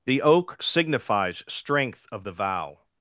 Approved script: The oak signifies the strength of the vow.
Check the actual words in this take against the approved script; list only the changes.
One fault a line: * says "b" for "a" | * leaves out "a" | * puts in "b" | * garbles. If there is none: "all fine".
* leaves out "the"